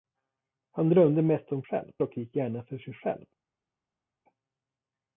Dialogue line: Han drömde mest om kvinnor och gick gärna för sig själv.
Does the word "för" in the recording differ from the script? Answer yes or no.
no